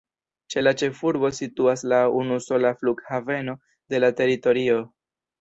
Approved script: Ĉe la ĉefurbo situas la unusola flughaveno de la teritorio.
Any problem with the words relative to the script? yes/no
no